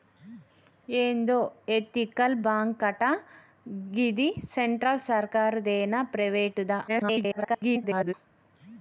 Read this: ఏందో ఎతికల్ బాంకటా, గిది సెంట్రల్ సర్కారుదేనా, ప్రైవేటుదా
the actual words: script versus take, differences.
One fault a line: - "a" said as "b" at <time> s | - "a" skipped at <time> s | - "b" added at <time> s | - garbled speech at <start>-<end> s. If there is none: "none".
- garbled speech at 6.9-8.1 s